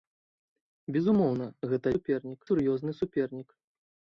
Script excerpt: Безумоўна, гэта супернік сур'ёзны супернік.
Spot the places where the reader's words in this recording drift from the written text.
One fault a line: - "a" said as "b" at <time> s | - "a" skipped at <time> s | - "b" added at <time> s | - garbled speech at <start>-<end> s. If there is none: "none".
none